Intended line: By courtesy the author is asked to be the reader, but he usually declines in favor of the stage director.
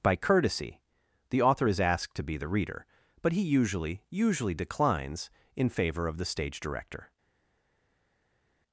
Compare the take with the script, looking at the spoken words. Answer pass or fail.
fail